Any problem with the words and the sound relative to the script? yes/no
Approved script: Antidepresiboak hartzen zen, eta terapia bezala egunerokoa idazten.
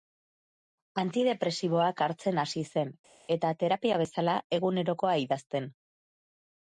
yes